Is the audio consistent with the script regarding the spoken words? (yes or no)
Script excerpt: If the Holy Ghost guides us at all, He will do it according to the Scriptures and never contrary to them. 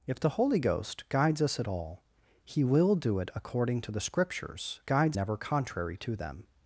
no